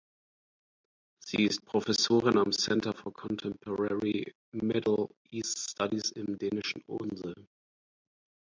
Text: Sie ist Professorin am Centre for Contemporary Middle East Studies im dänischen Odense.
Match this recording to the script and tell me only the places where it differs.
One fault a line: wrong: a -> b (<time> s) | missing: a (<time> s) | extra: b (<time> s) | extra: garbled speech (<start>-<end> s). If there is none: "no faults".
no faults